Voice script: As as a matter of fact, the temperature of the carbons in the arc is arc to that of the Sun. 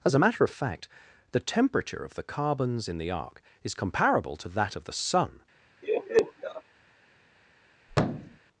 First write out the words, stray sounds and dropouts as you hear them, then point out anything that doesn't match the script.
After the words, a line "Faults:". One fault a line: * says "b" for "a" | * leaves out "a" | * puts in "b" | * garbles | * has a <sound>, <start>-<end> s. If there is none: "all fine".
As a matter of fact, the temperature of the carbons in the arc is comparable to that of the Sun.
Faults:
* leaves out "as"
* says "comparable" for "arc"
* has a laugh, 5.8-6.6 s
* has a thud, 7.9-8.4 s